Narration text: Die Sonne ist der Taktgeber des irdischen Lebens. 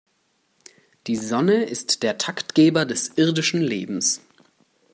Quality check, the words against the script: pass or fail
pass